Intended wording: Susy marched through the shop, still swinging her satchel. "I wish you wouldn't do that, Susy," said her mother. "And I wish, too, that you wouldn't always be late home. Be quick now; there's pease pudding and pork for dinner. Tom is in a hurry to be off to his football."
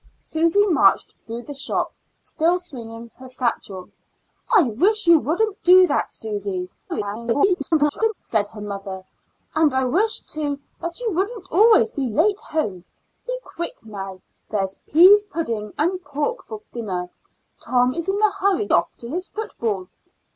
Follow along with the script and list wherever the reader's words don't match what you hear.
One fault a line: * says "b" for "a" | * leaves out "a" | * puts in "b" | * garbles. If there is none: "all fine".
* garbles
* leaves out "to be"